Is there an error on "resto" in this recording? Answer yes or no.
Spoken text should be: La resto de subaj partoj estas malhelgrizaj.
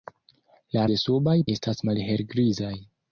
yes